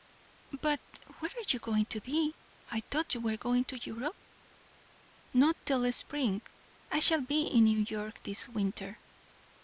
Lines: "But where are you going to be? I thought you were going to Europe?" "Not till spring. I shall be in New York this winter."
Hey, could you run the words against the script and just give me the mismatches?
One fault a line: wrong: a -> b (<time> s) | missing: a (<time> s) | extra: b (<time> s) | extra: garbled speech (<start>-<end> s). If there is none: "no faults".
no faults